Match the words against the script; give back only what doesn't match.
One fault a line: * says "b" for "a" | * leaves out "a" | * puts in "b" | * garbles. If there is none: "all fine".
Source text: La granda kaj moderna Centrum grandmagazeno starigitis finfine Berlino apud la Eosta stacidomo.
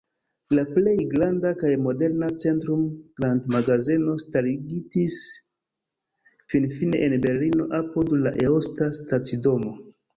* puts in "plej"
* puts in "en"